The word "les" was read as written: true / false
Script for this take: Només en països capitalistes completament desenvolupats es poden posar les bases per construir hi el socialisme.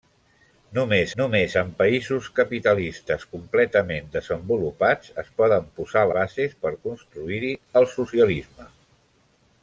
false